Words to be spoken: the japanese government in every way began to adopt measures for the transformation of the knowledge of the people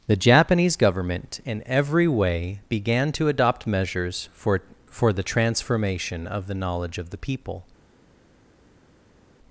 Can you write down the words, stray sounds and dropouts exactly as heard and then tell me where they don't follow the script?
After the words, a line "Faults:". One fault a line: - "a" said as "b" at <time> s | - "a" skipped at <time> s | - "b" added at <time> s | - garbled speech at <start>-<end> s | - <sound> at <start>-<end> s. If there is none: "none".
the japanese government in every way began to adopt measures for for the transformation of the knowledge of the people
Faults:
- "for" added at 4.9 s